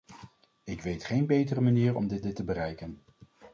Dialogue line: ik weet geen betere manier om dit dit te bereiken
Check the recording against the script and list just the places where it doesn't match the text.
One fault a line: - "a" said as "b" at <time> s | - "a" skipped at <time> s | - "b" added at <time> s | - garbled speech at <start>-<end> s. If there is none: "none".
none